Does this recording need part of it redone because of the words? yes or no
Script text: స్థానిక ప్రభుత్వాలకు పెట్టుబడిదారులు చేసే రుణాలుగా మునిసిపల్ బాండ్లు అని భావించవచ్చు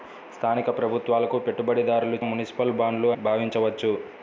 yes